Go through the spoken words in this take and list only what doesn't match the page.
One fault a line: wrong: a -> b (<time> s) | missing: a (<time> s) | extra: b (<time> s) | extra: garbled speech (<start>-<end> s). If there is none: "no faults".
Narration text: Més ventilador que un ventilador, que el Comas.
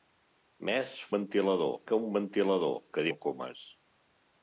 no faults